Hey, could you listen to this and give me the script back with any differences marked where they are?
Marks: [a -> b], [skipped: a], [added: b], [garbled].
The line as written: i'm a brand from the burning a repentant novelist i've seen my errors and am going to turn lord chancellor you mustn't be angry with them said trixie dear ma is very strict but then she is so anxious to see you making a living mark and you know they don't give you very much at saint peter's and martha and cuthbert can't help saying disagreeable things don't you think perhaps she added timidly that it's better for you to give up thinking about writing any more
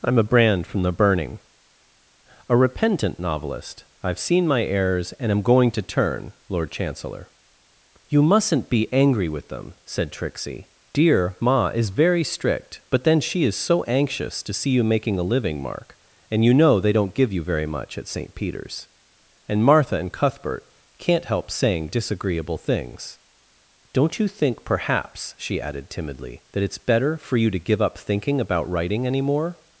i'm a brand from the burning a repentant novelist i've seen my errors and am going to turn lord chancellor you mustn't be angry with them said trixie dear ma is very strict but then she is so anxious to see you making a living mark and you know they don't give you very much at saint peter's and martha and cuthbert can't help saying disagreeable things don't you think perhaps she added timidly that it's better for you to give up thinking about writing any more